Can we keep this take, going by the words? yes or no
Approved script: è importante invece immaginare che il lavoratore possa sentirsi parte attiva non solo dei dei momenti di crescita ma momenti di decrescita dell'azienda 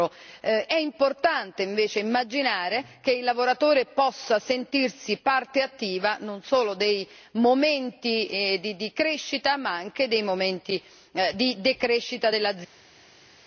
no